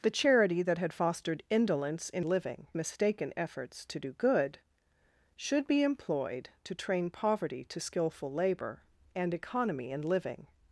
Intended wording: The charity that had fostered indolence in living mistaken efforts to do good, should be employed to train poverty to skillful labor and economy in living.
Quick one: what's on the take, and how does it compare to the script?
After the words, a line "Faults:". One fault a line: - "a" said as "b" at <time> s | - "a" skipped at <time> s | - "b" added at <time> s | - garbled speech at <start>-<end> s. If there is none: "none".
The charity that had fostered indolence in living mistaken efforts to do good, should be employed to train poverty to skillful labor and economy in living.
Faults:
none